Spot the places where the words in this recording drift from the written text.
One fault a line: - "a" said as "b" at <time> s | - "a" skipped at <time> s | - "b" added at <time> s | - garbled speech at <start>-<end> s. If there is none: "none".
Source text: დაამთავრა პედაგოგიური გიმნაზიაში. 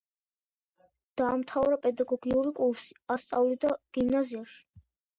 - "კურსი ასწავლიდა" added at 2.6 s